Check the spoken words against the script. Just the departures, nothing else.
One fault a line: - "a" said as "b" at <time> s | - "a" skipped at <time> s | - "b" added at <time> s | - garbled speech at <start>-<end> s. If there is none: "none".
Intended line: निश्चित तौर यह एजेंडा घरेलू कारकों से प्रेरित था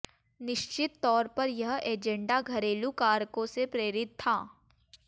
- "पर" added at 1.4 s